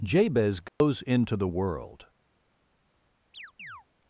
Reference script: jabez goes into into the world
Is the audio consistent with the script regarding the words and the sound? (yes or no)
no